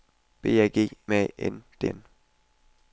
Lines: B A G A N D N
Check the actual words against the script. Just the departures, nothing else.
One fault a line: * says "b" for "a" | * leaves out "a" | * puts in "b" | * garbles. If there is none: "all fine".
all fine